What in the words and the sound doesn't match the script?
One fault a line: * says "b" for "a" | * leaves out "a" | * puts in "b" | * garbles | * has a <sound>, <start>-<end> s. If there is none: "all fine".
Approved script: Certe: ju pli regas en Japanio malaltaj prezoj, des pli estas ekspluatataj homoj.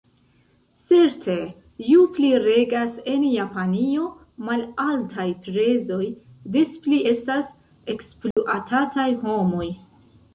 * has a dropout, 8.3-8.4 s